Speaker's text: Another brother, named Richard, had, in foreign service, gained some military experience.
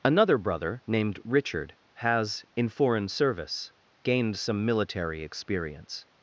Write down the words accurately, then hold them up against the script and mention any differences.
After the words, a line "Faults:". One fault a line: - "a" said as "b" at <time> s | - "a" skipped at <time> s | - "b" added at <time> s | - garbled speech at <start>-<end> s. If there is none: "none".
Another brother, named Richard, has, in foreign service, gained some military experience.
Faults:
- "had" said as "has" at 1.9 s